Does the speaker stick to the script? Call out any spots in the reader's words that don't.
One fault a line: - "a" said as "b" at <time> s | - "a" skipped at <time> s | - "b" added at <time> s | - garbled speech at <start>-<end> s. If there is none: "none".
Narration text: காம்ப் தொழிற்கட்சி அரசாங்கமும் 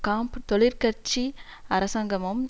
none